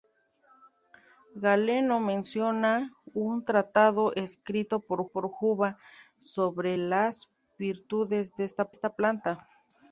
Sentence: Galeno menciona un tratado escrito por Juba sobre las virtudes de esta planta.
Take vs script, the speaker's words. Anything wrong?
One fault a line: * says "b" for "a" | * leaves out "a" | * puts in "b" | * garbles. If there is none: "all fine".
* puts in "por"
* puts in "esta"